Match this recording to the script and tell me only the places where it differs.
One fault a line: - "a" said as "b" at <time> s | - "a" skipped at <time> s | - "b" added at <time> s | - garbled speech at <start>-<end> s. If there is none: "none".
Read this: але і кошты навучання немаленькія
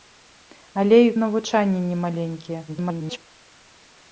- "кошты" skipped at 1.1 s
- garbled speech at 2.7-3.2 s